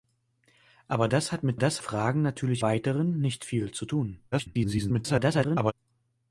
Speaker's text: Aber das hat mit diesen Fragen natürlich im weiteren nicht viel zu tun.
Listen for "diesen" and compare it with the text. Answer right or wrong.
wrong